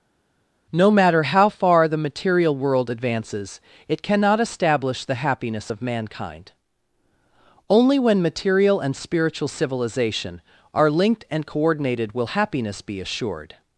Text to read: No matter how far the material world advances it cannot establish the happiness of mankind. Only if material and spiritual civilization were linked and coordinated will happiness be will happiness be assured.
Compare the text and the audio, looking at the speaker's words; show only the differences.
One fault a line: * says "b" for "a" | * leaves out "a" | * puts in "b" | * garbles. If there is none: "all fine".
* says "when" for "if"
* says "are" for "were"
* leaves out "will happiness be"